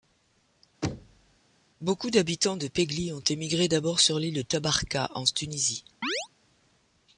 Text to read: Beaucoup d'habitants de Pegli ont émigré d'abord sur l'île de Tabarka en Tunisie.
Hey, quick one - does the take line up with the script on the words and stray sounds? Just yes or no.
no